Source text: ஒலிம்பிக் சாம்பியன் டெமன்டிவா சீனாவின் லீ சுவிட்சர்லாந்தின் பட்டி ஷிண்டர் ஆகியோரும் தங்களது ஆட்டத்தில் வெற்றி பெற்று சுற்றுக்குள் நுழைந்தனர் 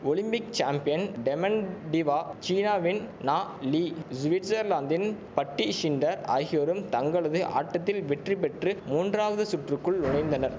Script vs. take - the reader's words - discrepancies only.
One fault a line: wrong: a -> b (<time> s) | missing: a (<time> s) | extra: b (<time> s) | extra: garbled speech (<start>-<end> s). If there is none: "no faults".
extra: நா (3.2 s)
extra: மூன்றாவது (8.9 s)